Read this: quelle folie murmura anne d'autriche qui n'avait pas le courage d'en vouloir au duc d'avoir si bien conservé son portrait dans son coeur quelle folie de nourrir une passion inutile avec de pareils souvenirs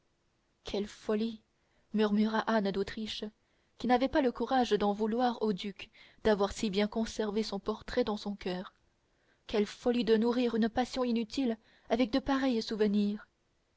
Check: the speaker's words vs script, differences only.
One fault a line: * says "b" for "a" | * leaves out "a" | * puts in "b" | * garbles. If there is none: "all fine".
all fine